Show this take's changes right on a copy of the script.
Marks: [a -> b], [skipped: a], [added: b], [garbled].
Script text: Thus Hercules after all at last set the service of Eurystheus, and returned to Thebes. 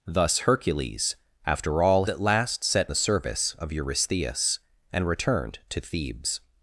Thus Hercules after all at last set the service of Eurystheus, and returned to Thebes.